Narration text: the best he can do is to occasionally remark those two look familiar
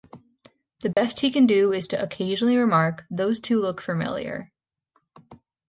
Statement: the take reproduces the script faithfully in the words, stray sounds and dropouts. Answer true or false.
false